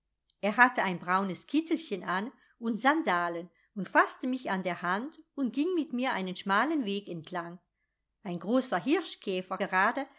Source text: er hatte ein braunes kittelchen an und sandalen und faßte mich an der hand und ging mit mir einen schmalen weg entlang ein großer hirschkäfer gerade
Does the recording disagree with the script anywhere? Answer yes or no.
no